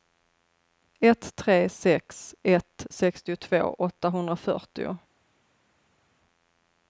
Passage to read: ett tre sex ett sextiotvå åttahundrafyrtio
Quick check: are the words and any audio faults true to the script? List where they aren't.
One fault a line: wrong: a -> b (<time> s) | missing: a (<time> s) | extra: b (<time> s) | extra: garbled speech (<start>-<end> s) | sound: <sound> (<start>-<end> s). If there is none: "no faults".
no faults